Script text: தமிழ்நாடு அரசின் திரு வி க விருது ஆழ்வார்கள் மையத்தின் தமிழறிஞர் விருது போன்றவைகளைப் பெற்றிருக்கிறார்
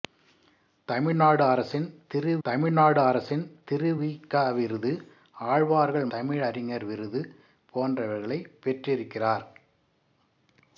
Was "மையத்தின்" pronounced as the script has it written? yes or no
no